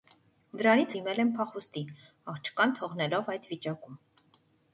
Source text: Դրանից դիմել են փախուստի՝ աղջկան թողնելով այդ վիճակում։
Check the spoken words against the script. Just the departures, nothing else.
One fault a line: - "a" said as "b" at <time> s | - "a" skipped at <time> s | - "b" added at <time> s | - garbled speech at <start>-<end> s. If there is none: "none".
none